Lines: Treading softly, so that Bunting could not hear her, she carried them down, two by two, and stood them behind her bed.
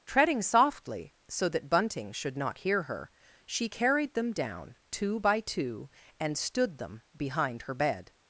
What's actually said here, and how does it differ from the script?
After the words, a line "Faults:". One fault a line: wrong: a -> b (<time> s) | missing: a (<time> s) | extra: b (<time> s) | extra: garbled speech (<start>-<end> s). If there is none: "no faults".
Treading softly, so that Bunting should not hear her, she carried them down, two by two, and stood them behind her bed.
Faults:
wrong: could -> should (2.1 s)